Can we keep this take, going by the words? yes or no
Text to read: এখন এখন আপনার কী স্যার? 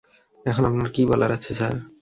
no